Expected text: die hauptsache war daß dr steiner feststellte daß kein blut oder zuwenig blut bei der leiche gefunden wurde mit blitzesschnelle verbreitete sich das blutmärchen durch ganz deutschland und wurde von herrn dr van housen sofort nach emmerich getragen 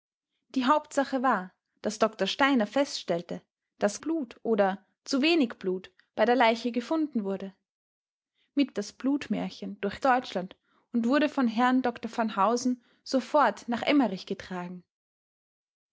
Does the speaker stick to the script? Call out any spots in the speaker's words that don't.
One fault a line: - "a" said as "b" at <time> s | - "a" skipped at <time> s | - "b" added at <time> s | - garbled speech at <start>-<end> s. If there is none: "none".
- "kein" skipped at 4.0 s
- "blitzesschnelle verbreitete sich" skipped at 8.8 s
- "ganz" skipped at 10.0 s